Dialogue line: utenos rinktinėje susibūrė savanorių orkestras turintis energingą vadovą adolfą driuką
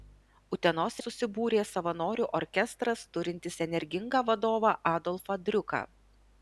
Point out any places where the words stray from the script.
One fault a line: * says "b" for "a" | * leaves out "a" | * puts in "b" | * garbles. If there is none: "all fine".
* leaves out "rinktinėje"